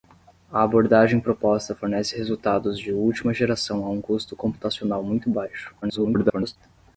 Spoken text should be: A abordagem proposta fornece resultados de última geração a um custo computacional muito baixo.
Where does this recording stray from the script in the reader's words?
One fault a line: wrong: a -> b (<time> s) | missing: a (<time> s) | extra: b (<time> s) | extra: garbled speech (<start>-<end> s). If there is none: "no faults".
extra: garbled speech (5.8-6.6 s)